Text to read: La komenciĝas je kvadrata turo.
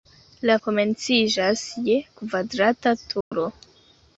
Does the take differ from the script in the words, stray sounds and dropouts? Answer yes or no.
yes